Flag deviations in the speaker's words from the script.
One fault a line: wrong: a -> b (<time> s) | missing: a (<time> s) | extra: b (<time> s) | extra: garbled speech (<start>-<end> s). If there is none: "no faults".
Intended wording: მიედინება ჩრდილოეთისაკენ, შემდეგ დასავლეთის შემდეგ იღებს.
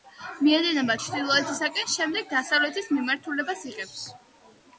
wrong: შემდეგ -> მიმართულებას (3.0 s)